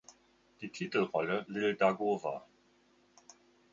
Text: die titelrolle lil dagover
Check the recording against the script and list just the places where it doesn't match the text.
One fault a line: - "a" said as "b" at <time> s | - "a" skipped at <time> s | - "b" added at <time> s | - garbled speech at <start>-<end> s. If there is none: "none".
none